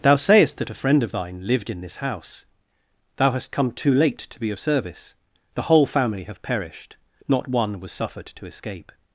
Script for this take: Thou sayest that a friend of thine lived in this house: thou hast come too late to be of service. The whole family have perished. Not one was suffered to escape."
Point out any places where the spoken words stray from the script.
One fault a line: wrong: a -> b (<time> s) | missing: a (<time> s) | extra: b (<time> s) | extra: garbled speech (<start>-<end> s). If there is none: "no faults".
no faults